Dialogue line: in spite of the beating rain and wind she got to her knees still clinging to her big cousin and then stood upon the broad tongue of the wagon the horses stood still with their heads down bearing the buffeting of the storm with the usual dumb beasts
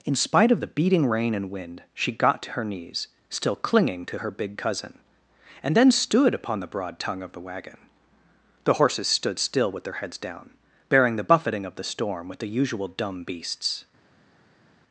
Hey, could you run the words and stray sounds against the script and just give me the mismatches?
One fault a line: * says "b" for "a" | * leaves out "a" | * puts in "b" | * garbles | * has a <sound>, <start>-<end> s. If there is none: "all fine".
all fine